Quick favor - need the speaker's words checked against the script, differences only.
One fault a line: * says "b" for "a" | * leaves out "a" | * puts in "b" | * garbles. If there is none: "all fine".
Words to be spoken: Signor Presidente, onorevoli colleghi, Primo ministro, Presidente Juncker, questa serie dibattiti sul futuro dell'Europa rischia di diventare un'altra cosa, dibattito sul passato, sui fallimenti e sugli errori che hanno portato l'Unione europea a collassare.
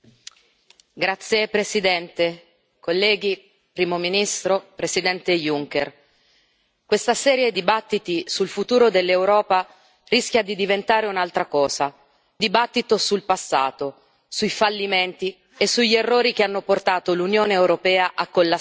all fine